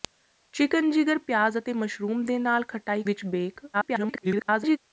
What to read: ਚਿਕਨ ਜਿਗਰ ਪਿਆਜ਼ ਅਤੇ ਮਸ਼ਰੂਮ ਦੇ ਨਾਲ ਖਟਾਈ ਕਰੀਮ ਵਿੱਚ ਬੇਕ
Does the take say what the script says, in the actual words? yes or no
no